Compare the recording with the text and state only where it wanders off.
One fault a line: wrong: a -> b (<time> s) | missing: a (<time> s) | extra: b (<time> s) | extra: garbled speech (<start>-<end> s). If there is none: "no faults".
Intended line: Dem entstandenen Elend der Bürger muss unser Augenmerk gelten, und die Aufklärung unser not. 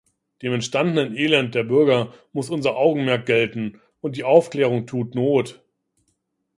wrong: unser -> tut (4.9 s)